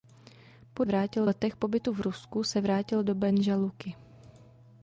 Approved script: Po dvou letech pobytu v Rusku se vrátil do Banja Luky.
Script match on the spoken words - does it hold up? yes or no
no